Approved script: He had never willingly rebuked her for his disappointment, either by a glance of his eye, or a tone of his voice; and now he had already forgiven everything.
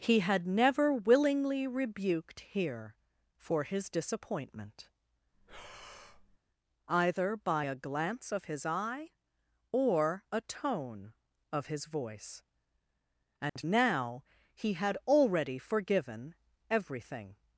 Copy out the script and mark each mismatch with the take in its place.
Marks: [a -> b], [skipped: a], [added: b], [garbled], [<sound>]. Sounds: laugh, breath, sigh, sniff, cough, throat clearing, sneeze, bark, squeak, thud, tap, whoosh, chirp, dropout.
He had never willingly rebuked [her -> here] for his disappointment, [breath] either by a glance of his eye, or a tone of his voice; and [dropout] now he had already forgiven everything.